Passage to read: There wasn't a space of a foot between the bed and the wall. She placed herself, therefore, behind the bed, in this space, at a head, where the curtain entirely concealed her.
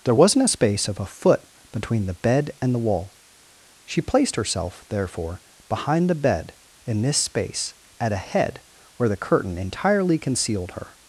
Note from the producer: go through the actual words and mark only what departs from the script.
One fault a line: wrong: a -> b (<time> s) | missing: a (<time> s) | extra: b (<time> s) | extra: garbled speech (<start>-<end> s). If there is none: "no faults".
no faults